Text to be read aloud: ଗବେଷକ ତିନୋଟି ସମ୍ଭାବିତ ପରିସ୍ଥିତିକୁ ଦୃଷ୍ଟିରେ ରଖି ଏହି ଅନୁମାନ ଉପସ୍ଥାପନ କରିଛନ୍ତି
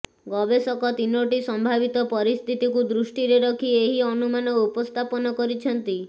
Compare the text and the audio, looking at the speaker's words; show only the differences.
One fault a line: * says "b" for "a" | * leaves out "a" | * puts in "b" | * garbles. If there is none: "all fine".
all fine